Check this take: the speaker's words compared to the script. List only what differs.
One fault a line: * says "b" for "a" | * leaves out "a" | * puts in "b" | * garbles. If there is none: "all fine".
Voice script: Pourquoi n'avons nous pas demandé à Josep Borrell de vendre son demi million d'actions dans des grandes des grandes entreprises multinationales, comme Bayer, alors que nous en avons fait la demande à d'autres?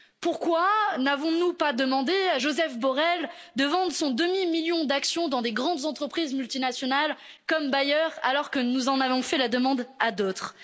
* leaves out "des grandes"